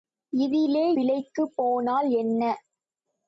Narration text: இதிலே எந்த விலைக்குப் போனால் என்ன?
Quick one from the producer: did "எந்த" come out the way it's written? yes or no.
no